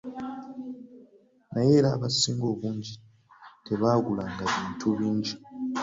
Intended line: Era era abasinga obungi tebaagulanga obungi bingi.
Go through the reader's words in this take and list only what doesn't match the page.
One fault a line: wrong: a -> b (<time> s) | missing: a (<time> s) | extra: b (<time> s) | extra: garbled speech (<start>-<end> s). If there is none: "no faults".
wrong: Era -> Naye (1.5 s)
wrong: obungi -> bintu (4.5 s)